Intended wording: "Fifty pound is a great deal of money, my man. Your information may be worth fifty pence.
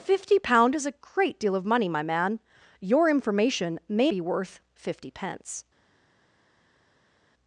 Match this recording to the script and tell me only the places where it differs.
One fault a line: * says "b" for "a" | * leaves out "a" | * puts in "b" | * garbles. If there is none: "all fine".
all fine